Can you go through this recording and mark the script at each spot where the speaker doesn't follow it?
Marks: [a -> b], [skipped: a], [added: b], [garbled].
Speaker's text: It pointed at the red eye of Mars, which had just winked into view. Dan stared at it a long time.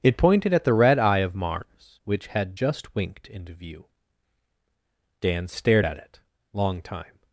It pointed at the red eye of Mars, which had just winked into view. Dan stared at it [skipped: a] long time.